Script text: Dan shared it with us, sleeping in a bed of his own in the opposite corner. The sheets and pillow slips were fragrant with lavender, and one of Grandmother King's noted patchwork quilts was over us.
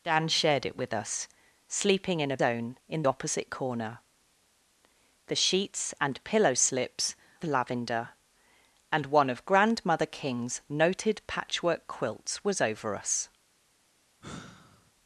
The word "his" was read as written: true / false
false